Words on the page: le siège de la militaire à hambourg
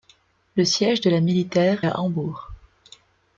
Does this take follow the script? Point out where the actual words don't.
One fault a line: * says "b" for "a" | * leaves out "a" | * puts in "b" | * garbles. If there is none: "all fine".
all fine